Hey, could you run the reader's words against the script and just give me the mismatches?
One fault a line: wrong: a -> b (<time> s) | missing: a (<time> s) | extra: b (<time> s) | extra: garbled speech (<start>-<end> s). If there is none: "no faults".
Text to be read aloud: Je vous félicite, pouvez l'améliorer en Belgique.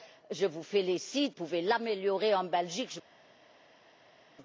no faults